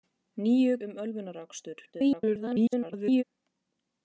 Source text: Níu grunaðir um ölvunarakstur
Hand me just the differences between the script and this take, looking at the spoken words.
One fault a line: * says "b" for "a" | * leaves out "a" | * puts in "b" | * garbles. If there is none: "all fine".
* leaves out "grunaðir"
* garbles